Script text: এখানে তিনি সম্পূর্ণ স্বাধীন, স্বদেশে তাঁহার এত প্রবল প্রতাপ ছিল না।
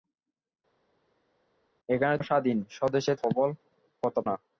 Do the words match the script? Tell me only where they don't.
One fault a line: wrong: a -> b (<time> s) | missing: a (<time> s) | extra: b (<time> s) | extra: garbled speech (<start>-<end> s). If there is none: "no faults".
missing: তিনি সম্পূর্ণ (2.2 s)
missing: তাঁহার এত (3.1 s)
missing: ছিল (4.2 s)